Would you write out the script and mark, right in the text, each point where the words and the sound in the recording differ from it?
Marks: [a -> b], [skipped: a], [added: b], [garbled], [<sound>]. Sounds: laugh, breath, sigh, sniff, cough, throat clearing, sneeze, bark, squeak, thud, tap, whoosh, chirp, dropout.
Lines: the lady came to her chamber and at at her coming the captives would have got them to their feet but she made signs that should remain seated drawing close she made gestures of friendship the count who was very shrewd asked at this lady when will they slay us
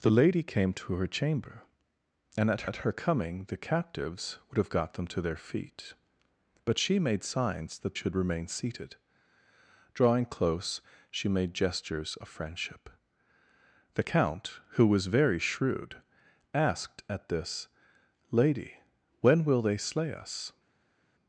the lady came to her chamber and at at her coming the captives would have got them to their feet but she made signs that should remain seated drawing close she made gestures of friendship the count who was very shrewd asked at this lady when will they slay us